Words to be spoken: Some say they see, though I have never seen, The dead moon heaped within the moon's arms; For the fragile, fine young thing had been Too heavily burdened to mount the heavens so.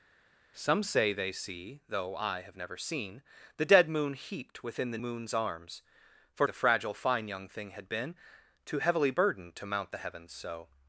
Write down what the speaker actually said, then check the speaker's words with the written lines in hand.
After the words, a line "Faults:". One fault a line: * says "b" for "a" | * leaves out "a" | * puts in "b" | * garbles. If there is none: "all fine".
Some say they see, though I have never seen, The dead moon heaped within the moon's arms; For the fragile, fine young thing had been Too heavily burdened to mount the heavens so.
Faults:
all fine